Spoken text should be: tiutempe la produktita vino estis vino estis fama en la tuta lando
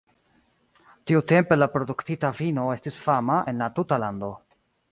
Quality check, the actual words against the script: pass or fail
fail